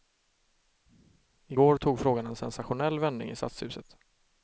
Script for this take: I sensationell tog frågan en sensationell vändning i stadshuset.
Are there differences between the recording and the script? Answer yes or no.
yes